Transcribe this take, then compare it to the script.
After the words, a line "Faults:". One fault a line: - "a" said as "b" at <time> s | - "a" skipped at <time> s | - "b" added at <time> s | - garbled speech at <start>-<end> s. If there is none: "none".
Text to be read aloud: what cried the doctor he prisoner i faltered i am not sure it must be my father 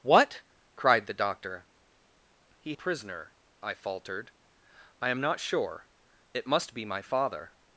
what cried the doctor he prisoner i faltered i am not sure it must be my father
Faults:
none